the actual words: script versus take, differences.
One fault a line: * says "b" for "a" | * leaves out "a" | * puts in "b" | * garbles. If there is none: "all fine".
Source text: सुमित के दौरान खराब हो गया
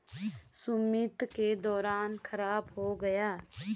all fine